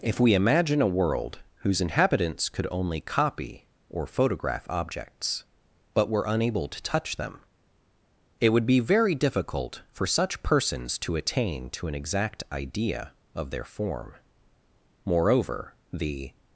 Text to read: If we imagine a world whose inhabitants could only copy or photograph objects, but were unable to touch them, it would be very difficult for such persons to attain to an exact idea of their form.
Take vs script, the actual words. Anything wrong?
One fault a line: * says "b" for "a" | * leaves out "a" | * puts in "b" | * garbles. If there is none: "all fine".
* puts in "Moreover the"